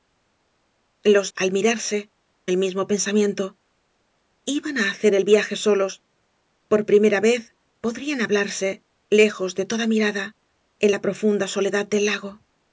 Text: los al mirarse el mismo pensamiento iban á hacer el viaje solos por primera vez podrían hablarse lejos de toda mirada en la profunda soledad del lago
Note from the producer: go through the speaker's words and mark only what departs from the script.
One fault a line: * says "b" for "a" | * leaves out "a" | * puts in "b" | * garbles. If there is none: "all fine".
all fine